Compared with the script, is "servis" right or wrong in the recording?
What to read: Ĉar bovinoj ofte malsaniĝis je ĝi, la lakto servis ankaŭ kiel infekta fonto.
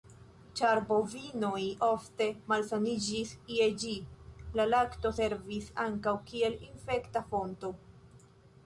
right